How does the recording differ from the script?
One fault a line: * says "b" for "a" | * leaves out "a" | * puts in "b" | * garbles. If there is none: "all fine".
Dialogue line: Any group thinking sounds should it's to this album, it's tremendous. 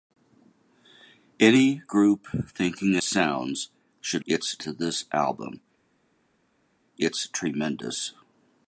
all fine